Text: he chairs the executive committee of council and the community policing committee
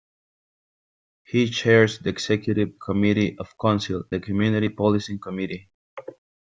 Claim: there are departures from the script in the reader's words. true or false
true